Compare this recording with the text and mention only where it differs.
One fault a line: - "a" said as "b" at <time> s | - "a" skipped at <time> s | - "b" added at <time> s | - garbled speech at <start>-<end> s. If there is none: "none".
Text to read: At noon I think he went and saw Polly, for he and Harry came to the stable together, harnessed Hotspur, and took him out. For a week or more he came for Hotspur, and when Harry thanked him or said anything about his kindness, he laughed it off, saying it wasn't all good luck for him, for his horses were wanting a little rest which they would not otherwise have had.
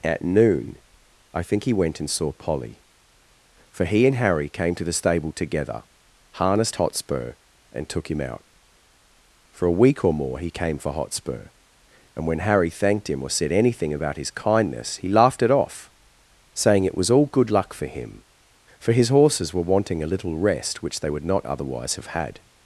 - "wasn't" said as "was" at 17.0 s